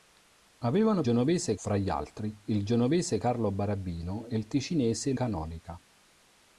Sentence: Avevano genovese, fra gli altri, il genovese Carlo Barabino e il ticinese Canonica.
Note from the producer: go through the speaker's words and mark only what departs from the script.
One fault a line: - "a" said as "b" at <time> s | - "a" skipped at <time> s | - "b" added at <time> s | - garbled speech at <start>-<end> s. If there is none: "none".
none